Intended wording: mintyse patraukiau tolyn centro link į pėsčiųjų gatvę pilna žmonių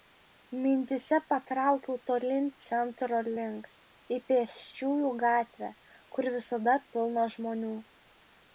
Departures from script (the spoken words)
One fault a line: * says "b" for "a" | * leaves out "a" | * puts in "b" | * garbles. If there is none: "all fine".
* puts in "kur visada"